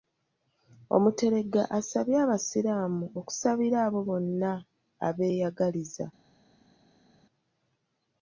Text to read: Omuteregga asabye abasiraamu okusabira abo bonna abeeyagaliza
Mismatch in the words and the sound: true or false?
false